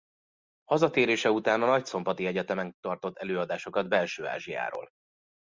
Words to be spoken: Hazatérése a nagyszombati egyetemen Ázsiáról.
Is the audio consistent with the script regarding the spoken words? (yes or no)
no